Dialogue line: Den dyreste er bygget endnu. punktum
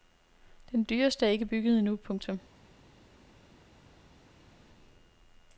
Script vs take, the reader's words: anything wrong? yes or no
yes